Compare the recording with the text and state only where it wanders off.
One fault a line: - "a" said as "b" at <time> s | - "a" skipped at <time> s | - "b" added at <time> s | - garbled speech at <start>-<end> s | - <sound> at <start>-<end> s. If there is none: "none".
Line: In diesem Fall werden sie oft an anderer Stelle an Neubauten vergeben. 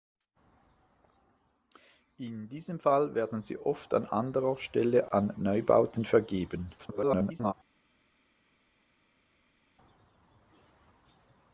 - garbled speech at 6.8-7.5 s